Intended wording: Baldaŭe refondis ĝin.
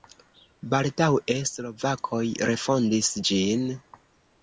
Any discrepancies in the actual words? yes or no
yes